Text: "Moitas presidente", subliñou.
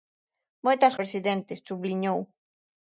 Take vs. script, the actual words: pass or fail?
pass